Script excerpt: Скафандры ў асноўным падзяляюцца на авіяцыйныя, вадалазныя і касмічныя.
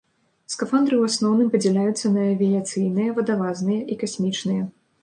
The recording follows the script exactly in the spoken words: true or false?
true